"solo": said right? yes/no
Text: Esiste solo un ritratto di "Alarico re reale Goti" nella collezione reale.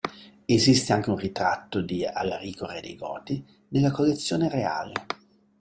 no